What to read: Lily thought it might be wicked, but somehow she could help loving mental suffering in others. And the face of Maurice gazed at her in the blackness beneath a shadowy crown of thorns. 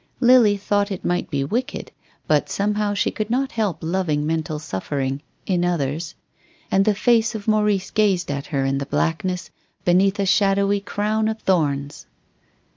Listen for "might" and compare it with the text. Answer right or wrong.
right